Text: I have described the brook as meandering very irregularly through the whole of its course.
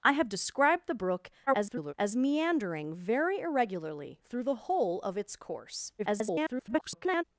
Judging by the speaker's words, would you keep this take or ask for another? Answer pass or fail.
fail